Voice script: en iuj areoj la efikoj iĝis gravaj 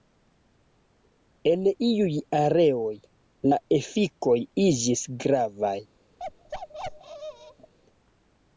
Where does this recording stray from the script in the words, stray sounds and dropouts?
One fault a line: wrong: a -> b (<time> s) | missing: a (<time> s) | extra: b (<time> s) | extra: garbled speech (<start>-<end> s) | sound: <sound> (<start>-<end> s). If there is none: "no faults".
sound: bark (6.2-7.7 s)